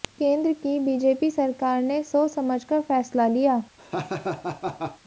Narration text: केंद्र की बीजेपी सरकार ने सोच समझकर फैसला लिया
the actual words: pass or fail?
pass